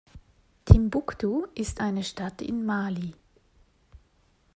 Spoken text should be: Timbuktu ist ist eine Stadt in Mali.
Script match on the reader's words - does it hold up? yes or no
no